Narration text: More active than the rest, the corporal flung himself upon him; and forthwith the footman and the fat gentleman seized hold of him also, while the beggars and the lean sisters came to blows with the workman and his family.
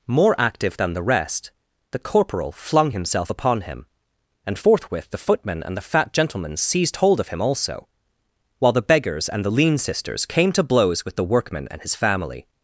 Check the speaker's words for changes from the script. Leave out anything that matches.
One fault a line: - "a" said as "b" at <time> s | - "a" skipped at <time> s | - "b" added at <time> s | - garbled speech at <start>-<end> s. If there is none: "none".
none